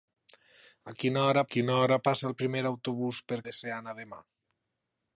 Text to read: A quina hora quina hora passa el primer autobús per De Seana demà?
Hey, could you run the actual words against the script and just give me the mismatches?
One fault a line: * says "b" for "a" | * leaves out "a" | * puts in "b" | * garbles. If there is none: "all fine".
all fine